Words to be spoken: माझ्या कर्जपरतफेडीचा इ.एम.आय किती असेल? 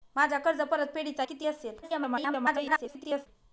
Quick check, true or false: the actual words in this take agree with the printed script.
false